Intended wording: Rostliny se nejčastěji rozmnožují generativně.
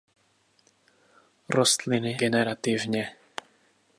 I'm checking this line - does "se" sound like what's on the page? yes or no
no